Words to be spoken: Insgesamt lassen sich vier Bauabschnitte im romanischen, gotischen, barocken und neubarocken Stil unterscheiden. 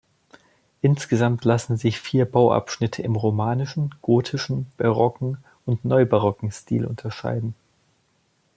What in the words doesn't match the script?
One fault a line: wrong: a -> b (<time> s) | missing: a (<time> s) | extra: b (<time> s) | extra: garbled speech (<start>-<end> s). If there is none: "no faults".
no faults